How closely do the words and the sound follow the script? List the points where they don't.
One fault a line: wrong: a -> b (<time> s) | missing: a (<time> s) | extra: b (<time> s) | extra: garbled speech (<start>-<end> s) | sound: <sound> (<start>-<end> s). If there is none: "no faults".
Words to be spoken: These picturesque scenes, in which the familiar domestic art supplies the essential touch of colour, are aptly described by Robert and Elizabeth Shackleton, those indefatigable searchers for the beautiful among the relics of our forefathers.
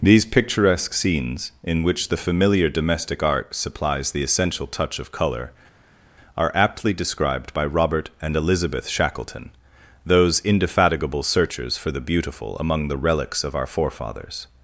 no faults